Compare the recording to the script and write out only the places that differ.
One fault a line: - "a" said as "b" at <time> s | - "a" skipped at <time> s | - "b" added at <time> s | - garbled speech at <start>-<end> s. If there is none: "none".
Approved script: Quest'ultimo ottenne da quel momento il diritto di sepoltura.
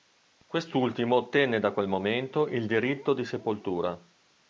none